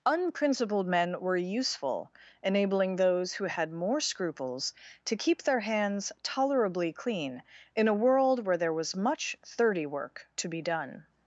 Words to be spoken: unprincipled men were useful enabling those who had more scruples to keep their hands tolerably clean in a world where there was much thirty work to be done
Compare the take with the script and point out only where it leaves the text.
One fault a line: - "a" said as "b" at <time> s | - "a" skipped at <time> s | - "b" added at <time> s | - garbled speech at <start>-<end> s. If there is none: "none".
none